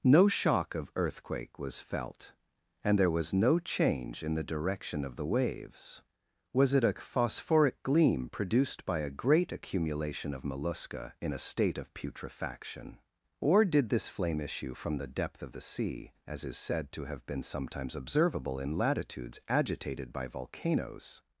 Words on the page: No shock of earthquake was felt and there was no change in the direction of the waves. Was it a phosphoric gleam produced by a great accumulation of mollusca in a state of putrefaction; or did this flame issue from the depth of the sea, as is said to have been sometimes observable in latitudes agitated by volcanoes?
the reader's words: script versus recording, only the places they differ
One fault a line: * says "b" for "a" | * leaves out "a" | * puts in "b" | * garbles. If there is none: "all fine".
all fine